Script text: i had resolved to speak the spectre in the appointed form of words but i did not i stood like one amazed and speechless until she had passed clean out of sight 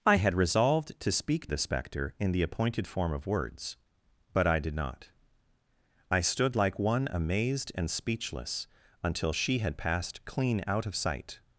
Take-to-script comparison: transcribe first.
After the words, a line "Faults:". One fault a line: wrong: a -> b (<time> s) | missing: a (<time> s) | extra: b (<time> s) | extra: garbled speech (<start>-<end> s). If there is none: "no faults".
i had resolved to speak the spectre in the appointed form of words but i did not i stood like one amazed and speechless until she had passed clean out of sight
Faults:
no faults